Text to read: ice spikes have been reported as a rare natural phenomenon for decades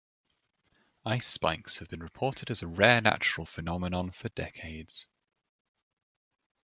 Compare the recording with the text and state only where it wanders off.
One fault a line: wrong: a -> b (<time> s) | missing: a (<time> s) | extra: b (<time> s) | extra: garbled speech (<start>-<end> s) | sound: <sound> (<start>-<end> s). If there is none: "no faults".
no faults